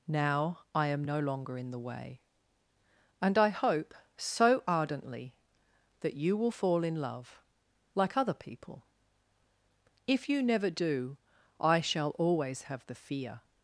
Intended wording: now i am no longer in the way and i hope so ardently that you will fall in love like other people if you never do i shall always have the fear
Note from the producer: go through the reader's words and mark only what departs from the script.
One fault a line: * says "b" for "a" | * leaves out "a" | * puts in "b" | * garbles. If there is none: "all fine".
all fine